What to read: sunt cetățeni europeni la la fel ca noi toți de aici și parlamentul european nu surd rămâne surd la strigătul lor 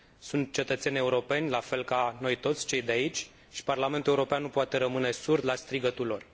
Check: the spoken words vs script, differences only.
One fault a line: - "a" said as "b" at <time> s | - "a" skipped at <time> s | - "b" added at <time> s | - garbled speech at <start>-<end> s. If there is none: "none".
- "la" skipped at 1.6 s
- "cei" added at 2.6 s
- "surd" said as "poate" at 4.5 s